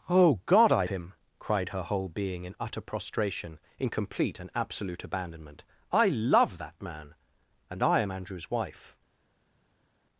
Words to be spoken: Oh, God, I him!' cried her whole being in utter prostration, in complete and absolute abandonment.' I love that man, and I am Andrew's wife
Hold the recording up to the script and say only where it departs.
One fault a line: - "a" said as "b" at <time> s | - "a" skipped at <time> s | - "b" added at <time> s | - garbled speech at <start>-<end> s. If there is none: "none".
none